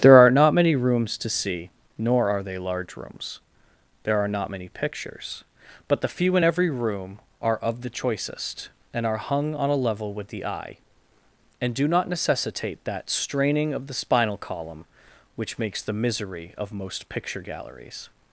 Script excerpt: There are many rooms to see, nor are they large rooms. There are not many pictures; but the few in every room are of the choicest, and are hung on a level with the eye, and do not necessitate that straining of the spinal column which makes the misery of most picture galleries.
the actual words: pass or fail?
fail